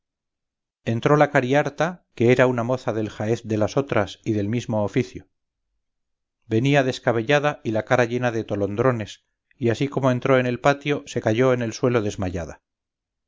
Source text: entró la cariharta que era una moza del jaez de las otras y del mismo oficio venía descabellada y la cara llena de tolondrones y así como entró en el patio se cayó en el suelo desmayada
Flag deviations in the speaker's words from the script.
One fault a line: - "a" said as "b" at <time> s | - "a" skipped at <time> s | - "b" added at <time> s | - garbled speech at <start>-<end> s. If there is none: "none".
none